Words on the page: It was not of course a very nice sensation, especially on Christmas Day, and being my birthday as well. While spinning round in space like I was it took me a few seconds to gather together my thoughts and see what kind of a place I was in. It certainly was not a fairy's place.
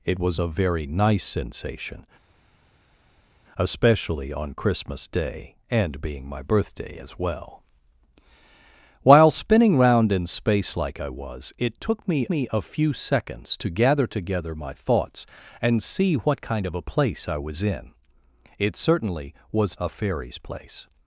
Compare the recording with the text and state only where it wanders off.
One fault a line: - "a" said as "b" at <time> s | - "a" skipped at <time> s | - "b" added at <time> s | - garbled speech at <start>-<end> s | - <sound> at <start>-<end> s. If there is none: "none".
- "not of course" skipped at 0.4 s
- "me" added at 12.3 s
- "not" skipped at 19.8 s